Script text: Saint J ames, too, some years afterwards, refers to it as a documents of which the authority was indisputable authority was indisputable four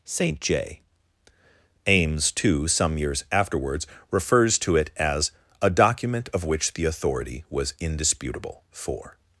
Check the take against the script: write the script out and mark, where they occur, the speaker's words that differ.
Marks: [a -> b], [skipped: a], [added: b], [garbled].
Saint J ames, too, some years afterwards, refers to it as a [documents -> document] of which the authority was indisputable [skipped: authority was indisputable] four